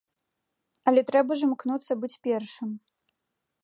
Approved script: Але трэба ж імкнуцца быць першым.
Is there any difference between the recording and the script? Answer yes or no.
no